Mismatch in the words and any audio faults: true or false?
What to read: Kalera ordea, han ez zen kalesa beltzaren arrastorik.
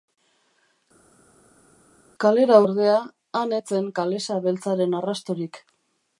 false